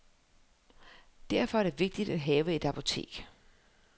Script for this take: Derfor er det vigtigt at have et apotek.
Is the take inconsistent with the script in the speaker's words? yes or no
no